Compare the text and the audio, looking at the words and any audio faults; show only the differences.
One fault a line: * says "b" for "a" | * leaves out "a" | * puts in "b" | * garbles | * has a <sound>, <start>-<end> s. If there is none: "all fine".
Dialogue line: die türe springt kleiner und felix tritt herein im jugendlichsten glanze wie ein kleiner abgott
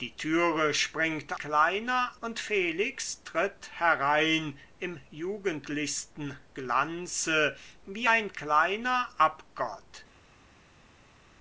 all fine